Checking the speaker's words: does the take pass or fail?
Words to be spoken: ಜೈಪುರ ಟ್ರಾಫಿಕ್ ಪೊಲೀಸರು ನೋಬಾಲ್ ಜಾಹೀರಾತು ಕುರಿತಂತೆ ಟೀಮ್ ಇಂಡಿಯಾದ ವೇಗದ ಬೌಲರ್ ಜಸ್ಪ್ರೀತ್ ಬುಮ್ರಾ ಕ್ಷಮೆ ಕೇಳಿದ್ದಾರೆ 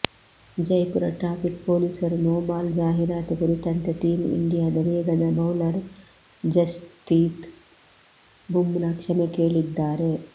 pass